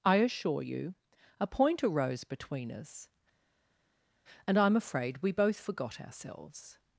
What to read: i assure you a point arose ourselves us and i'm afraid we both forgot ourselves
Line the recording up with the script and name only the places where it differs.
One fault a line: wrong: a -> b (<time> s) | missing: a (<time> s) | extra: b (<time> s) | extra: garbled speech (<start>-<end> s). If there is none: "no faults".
wrong: ourselves -> between (2.2 s)